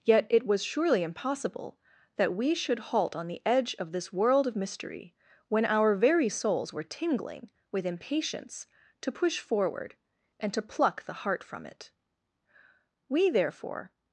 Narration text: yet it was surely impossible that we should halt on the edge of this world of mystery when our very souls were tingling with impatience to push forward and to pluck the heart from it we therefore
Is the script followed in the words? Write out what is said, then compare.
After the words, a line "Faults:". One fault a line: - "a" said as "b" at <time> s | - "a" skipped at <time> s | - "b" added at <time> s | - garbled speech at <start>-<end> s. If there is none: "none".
yet it was surely impossible that we should halt on the edge of this world of mystery when our very souls were tingling with impatience to push forward and to pluck the heart from it we therefore
Faults:
none